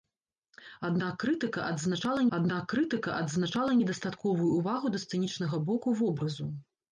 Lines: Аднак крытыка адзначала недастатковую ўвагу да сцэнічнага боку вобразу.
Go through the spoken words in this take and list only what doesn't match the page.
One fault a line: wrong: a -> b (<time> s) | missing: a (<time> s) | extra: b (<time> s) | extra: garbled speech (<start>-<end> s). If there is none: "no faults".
extra: аднак крытыка адзначала (2.4 s)